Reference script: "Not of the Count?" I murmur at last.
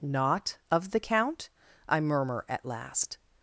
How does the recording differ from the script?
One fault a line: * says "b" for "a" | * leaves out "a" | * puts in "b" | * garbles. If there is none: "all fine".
all fine